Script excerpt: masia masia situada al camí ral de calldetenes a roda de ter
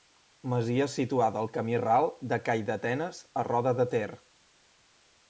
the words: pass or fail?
fail